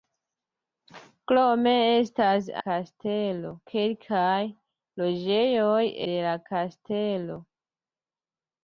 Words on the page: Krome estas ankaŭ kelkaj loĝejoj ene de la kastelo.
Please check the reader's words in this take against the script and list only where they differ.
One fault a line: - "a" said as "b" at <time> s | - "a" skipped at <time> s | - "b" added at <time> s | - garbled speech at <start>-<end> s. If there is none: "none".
- "ankaŭ" said as "kastelo" at 2.6 s
- "ene" skipped at 5.8 s